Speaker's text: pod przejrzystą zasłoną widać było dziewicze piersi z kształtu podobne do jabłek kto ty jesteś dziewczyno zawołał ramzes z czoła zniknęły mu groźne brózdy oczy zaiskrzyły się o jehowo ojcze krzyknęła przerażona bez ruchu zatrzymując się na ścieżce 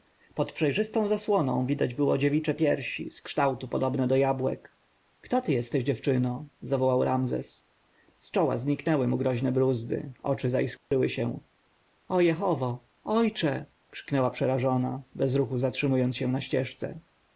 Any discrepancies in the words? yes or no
no